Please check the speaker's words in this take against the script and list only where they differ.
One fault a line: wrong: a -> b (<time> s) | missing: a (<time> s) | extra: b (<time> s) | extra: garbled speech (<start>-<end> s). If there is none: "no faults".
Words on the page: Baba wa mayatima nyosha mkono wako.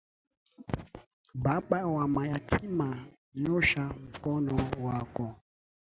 no faults